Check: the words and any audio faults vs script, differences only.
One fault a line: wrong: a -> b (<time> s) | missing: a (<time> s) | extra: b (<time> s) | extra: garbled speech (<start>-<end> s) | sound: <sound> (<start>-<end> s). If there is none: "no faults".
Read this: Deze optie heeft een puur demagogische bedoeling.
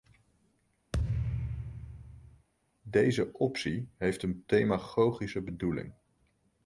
sound: thud (0.9-2.5 s)
missing: puur (4.4 s)